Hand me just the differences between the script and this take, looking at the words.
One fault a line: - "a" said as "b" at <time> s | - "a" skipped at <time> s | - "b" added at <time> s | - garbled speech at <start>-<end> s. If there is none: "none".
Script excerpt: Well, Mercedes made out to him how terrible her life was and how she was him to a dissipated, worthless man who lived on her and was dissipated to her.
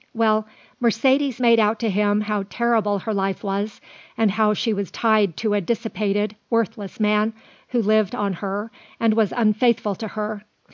- "him" said as "tied" at 4.9 s
- "dissipated" said as "unfaithful" at 9.3 s